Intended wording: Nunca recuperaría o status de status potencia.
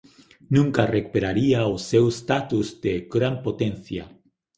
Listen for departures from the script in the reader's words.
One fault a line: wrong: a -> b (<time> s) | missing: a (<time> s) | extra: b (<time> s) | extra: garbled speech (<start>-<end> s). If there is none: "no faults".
extra: seu (1.9 s)
wrong: status -> gran (3.1 s)